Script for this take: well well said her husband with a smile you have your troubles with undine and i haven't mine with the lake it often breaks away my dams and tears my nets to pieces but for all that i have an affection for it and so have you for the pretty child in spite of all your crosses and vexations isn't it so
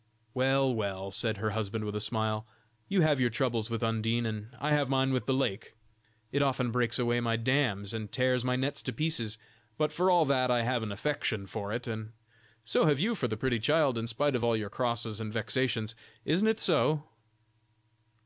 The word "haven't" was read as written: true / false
false